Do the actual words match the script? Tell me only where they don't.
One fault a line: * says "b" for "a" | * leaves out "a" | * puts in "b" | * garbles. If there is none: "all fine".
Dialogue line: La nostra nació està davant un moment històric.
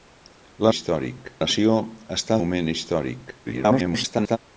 * says "històric" for "nostra"
* leaves out "davant un"
* garbles